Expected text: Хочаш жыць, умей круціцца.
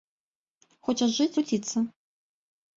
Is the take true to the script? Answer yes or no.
no